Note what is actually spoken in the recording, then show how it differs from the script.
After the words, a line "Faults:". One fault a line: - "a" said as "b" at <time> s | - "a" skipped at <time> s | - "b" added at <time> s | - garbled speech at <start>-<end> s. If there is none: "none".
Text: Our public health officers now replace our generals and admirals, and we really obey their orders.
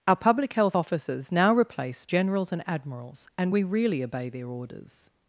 Our public health officers now replace generals and admirals, and we really obey their orders.
Faults:
- "our" skipped at 2.1 s